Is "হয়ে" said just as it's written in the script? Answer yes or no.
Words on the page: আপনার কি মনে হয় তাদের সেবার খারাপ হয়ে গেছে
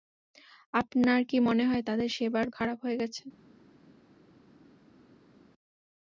yes